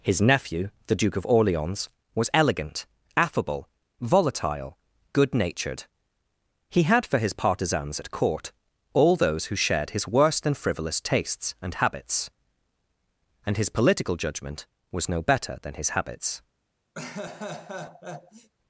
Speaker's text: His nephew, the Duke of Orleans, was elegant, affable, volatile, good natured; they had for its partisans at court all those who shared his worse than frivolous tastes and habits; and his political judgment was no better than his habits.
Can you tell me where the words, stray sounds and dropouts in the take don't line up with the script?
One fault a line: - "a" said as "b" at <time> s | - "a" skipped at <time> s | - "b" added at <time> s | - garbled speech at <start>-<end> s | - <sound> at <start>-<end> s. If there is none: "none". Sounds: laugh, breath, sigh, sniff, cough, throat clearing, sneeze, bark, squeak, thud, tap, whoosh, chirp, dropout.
- "they" said as "he" at 6.7 s
- "its" said as "his" at 7.2 s
- laugh at 16.9-18.5 s